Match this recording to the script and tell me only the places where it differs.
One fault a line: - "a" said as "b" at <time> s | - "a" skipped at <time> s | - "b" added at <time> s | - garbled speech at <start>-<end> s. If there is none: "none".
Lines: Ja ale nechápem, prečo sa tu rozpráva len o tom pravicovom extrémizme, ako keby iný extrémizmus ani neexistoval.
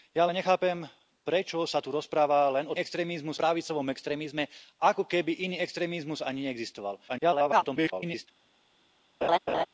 - "tom" said as "extrémizmus" at 2.8 s
- garbled speech at 7.1-8.3 s